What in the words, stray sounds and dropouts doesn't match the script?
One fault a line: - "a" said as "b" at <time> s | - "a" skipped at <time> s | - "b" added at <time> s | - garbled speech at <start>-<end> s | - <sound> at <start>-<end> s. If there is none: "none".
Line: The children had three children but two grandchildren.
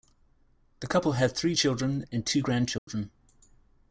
- "children" said as "couple" at 0.9 s
- "but" said as "and" at 2.1 s
- dropout at 2.8-2.9 s